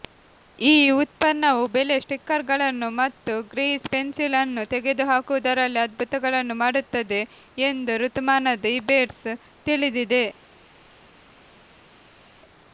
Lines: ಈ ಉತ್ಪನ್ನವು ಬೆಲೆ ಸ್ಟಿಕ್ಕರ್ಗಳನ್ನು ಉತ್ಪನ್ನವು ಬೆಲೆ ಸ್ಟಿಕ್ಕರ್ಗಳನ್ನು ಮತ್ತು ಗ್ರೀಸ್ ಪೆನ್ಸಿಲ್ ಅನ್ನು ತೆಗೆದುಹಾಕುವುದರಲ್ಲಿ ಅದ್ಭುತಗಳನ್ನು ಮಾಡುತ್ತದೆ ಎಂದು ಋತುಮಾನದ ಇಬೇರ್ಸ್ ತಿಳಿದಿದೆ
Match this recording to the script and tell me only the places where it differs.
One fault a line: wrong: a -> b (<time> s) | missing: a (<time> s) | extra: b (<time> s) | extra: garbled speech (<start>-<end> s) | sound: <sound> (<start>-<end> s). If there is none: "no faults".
missing: ಉತ್ಪನ್ನವು ಬೆಲೆ ಸ್ಟಿಕ್ಕರ್ಗಳನ್ನು (2.9 s)